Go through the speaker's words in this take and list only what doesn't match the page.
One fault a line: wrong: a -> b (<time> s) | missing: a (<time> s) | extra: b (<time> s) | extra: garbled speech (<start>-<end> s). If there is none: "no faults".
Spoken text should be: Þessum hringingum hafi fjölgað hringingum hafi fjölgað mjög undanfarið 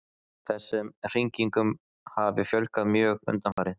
missing: hringingum hafi fjölgað (2.9 s)